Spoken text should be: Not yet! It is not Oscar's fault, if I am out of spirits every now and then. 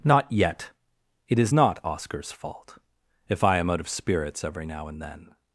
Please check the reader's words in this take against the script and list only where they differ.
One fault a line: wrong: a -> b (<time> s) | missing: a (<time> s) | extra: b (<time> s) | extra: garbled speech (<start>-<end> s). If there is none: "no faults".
no faults